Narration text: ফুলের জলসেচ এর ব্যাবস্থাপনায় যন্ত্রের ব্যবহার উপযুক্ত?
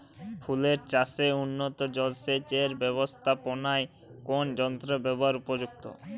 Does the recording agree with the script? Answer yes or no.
no